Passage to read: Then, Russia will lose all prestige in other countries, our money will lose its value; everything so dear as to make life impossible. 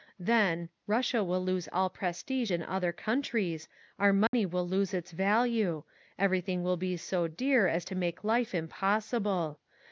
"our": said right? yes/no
yes